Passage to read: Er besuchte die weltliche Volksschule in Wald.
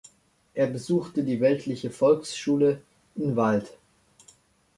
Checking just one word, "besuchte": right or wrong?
right